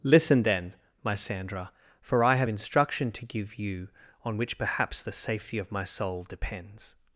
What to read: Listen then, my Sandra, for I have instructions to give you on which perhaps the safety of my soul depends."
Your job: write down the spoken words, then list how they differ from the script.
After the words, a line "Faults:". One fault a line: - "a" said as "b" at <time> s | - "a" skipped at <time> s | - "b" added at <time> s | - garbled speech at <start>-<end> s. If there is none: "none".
Listen then, my Sandra, for I have instruction to give you on which perhaps the safety of my soul depends."
Faults:
- "instructions" said as "instruction" at 2.5 s